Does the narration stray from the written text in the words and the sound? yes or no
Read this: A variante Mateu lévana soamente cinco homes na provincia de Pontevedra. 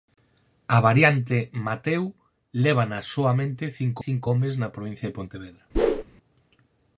yes